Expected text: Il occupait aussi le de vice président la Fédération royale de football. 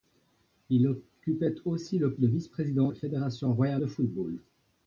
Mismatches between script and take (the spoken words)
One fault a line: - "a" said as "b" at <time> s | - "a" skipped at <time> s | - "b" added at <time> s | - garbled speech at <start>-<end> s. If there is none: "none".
none